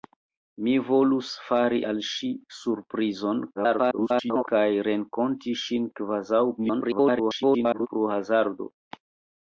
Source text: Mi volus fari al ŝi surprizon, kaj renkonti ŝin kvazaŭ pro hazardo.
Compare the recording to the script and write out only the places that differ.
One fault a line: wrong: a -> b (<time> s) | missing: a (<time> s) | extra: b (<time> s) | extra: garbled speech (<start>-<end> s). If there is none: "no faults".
extra: garbled speech (3.5-4.5 s)
extra: garbled speech (6.6-7.9 s)